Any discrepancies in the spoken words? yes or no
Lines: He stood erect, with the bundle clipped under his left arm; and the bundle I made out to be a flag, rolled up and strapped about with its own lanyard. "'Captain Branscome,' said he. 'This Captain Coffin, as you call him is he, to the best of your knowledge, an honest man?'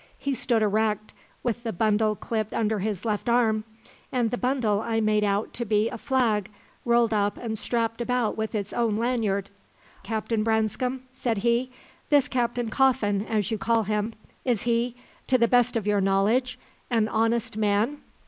no